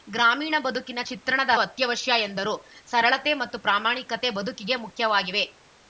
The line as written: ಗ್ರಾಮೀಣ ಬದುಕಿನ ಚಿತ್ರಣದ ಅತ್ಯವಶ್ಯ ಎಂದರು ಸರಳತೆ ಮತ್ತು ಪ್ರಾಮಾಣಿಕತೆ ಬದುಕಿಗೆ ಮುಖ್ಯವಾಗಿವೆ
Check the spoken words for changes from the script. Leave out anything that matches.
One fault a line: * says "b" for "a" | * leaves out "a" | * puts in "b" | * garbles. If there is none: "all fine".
all fine